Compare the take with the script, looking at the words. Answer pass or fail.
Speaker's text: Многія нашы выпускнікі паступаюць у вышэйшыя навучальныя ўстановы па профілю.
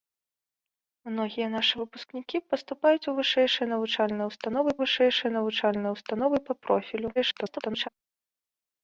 fail